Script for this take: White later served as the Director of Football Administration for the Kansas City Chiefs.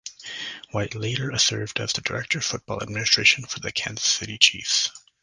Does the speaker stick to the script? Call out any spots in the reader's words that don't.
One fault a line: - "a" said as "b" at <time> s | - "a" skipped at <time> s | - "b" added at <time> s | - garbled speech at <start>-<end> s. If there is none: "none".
none